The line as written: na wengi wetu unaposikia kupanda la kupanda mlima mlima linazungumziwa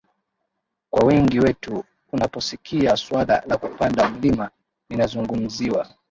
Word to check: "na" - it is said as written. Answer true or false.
false